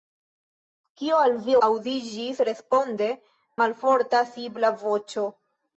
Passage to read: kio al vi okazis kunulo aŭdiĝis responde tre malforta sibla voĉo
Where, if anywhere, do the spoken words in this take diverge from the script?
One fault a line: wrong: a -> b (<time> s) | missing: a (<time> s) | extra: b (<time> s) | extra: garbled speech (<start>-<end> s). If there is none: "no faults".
missing: okazis kunulo (1.6 s)
missing: tre (3.1 s)